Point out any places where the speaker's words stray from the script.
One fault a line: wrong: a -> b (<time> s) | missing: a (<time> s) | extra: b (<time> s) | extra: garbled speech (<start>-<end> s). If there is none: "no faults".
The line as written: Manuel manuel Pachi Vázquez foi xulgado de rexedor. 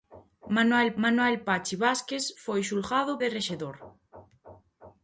no faults